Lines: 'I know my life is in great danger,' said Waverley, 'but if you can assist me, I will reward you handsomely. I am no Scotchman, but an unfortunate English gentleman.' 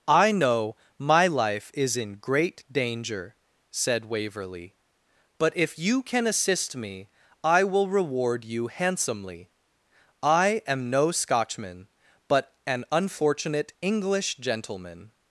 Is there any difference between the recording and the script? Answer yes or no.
no